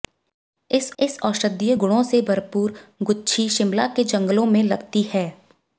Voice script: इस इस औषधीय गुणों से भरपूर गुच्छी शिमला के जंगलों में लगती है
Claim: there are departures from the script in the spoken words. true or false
false